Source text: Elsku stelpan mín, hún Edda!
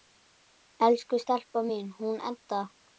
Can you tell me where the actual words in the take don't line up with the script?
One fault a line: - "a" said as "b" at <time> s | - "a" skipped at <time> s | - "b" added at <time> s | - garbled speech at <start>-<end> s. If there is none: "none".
none